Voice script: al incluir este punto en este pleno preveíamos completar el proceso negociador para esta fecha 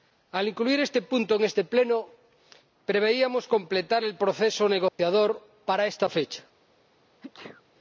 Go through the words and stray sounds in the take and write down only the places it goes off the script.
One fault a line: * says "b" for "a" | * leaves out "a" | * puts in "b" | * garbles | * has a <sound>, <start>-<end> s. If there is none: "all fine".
* has a dropout, 4.9-5.0 s
* has a sneeze, 7.2-7.6 s